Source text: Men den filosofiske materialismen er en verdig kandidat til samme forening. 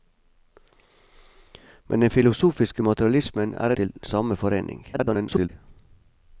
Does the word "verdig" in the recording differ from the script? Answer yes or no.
yes